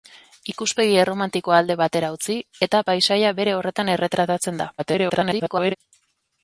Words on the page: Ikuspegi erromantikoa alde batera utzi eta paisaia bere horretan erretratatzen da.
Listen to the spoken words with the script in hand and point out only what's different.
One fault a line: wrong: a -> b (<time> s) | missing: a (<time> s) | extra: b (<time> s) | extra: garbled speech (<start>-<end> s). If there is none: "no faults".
extra: garbled speech (4.8-5.8 s)